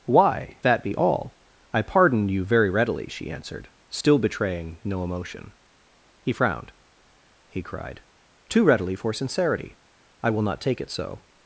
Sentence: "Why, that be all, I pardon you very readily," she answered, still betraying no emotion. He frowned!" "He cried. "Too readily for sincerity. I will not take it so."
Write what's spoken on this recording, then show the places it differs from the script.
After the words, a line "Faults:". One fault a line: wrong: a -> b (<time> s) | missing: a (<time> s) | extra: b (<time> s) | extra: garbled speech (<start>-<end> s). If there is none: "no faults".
"Why, that be all, I pardon you very readily," she answered, still betraying no emotion. He frowned!" "He cried. "Too readily for sincerity. I will not take it so."
Faults:
no faults